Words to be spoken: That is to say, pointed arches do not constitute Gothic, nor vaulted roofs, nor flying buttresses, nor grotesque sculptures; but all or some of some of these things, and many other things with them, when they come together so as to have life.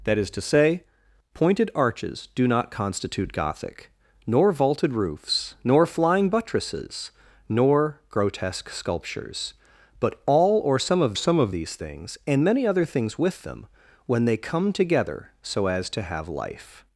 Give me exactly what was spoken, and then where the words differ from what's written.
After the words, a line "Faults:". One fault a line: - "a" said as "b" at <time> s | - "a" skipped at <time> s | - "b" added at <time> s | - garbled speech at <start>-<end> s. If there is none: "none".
That is to say, pointed arches do not constitute Gothic, nor vaulted roofs, nor flying buttresses, nor grotesque sculptures; but all or some of some of these things, and many other things with them, when they come together so as to have life.
Faults:
none